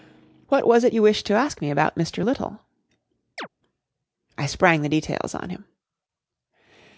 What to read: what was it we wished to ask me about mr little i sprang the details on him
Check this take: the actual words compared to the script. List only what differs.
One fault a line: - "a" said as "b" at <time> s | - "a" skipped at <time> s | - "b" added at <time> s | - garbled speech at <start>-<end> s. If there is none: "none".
- "we" said as "you" at 0.9 s